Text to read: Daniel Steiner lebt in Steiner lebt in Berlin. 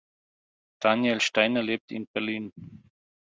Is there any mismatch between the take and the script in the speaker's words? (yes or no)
yes